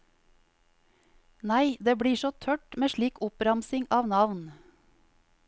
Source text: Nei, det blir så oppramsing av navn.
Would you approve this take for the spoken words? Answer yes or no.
no